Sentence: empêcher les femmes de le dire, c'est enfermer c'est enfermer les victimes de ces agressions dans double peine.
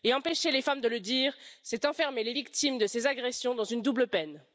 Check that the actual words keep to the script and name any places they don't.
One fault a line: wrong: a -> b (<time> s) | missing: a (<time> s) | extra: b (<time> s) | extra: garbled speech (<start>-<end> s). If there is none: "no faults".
missing: c'est enfermer (2.2 s)
extra: une (3.6 s)